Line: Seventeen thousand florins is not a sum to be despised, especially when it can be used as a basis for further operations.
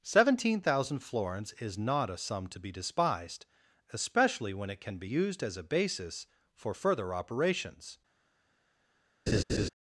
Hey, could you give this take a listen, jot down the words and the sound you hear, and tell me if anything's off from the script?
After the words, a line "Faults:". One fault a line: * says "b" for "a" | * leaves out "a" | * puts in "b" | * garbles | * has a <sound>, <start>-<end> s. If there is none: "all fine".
Seventeen thousand florins is not a sum to be despised, especially when it can be used as a basis for further operations.
Faults:
* has a laugh, 9.3-9.7 s